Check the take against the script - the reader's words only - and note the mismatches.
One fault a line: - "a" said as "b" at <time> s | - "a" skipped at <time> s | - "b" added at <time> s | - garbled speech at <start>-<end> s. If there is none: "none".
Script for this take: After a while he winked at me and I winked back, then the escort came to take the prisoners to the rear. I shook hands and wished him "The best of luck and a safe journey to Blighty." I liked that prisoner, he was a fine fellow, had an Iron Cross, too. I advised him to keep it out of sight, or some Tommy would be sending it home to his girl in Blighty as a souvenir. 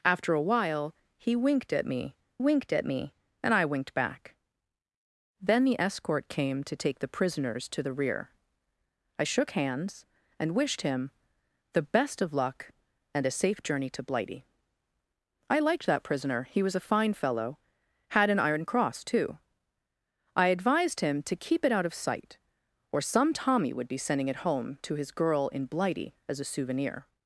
- "winked at me" added at 2.4 s